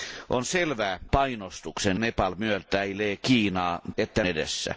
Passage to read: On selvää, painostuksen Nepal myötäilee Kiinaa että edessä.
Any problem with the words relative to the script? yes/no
no